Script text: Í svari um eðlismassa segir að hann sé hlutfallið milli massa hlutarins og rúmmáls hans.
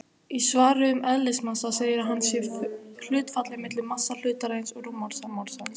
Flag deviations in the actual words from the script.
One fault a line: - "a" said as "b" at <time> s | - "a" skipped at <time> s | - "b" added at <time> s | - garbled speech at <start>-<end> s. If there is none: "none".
- "rúmmáls" added at 5.2 s